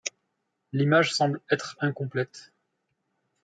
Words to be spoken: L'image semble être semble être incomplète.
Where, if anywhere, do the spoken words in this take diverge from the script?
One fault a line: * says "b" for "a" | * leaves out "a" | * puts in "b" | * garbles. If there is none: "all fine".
* leaves out "semble être"